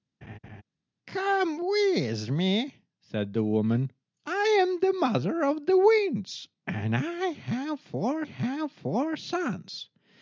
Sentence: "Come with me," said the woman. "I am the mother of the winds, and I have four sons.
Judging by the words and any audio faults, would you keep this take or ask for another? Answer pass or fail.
fail